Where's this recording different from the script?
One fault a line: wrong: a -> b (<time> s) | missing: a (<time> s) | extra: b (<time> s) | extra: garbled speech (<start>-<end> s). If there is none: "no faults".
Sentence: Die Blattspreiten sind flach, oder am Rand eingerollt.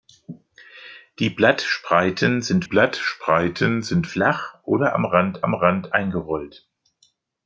extra: Blattspreiten sind (2.6 s)
extra: am Rand (5.4 s)